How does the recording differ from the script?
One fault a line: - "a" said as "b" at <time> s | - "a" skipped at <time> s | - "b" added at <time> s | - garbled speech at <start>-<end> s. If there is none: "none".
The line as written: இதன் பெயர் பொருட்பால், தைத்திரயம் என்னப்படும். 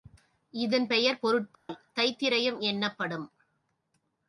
none